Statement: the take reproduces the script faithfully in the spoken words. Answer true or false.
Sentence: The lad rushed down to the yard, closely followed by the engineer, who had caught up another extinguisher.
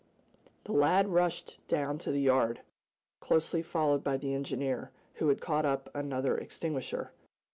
true